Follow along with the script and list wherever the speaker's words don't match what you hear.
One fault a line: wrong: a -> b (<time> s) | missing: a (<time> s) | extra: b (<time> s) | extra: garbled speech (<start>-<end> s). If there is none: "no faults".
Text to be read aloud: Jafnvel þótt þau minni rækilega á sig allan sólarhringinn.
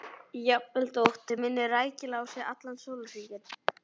no faults